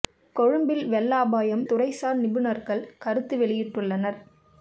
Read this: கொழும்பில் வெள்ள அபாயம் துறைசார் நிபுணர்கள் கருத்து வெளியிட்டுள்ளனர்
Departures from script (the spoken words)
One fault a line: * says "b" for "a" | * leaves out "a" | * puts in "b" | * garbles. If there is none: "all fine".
all fine